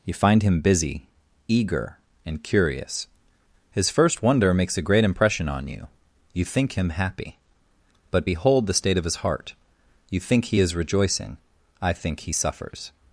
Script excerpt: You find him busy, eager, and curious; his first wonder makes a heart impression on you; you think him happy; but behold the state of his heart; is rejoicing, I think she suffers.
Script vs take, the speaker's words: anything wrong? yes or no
yes